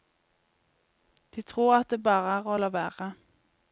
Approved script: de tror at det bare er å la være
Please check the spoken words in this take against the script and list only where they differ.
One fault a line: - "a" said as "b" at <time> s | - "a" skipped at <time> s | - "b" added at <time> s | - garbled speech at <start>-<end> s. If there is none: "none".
none